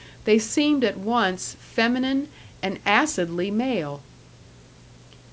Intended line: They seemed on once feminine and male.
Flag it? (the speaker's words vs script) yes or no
yes